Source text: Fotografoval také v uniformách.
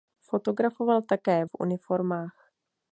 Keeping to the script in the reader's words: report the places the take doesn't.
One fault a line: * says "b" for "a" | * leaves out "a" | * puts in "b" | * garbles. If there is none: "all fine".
all fine